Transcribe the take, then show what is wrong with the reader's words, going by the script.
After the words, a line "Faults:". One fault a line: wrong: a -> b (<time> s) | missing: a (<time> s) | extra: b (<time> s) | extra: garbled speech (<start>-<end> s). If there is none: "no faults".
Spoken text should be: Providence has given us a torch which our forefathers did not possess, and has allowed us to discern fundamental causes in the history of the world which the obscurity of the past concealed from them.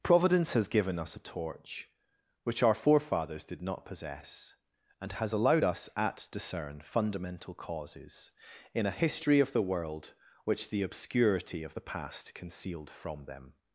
Providence has given us a torch which our forefathers did not possess, and has allowed us at discern fundamental causes in a history of the world which the obscurity of the past concealed from them.
Faults:
wrong: to -> at (5.9 s)
wrong: the -> a (8.8 s)